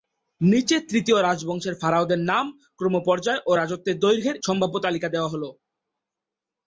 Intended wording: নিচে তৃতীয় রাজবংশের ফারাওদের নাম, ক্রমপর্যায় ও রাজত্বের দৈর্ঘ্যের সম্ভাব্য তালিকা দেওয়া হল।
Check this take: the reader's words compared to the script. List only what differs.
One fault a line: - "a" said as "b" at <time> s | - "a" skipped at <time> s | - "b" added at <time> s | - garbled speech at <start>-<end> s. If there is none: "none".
none